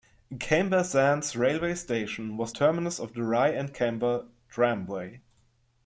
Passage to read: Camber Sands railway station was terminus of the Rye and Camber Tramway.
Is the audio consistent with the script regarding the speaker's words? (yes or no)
yes